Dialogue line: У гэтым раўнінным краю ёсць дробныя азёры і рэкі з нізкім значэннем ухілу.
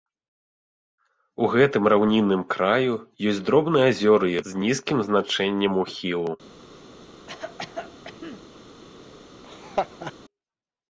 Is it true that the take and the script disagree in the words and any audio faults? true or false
true